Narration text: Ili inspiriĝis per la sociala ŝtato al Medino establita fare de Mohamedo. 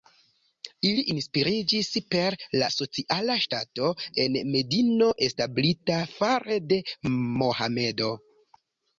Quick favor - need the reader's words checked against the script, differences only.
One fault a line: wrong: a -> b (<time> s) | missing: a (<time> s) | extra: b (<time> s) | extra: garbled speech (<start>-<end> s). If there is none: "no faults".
wrong: al -> en (4.2 s)